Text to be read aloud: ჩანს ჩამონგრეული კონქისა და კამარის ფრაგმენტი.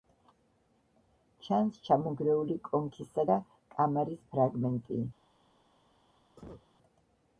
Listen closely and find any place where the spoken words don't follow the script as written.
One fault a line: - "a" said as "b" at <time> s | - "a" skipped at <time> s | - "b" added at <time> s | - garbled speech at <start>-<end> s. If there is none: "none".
none